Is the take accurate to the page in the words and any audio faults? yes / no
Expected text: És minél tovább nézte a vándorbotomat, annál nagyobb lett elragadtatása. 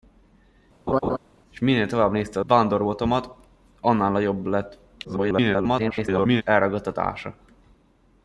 no